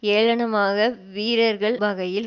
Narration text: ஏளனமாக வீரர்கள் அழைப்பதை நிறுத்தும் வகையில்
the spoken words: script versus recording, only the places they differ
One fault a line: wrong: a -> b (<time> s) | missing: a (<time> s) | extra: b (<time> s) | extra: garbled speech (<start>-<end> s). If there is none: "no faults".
missing: அழைப்பதை நிறுத்தும் (1.8 s)